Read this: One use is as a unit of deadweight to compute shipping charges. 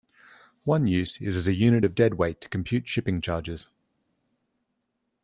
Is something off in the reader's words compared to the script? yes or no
no